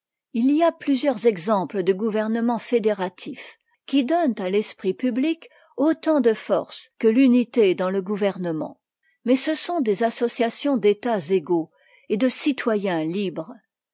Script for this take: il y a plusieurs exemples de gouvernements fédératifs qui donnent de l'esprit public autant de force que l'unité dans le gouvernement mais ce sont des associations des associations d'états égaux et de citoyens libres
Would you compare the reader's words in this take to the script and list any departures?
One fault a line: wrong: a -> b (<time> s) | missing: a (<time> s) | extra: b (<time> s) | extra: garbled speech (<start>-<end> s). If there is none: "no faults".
wrong: de -> à (4.4 s)
missing: des associations (10.8 s)